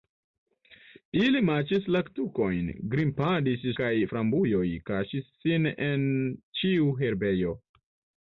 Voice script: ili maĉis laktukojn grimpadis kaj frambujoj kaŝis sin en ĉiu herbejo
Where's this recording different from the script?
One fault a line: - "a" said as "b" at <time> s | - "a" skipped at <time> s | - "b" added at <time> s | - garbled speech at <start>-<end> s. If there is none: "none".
none